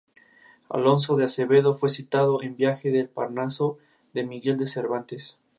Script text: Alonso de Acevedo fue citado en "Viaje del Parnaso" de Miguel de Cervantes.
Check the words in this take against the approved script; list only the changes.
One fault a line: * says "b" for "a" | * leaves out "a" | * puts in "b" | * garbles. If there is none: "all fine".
all fine